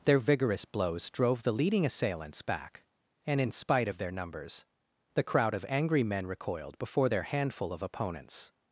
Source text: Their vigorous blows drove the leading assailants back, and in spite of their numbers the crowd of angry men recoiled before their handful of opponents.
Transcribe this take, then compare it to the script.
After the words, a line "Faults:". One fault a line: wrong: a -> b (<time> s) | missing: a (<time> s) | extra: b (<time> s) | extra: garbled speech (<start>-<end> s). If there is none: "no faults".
Their vigorous blows drove the leading assailants back, and in spite of their numbers the crowd of angry men recoiled before their handful of opponents.
Faults:
no faults